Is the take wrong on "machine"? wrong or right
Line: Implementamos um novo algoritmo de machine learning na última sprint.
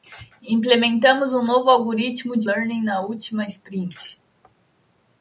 wrong